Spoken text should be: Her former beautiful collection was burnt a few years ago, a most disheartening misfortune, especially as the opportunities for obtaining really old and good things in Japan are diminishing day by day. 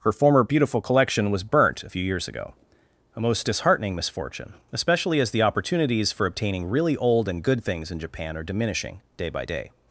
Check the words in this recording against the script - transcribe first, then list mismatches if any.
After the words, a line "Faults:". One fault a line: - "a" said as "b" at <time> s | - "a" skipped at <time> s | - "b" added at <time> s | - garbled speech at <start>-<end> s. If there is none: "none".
Her former beautiful collection was burnt a few years ago, a most disheartening misfortune, especially as the opportunities for obtaining really old and good things in Japan are diminishing day by day.
Faults:
none